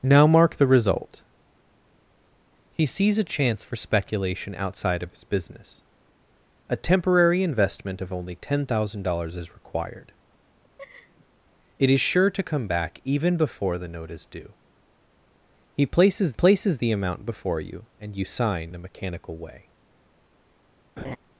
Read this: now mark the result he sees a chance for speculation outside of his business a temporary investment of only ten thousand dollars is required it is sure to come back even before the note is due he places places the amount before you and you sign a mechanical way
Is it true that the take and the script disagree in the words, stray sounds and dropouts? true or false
true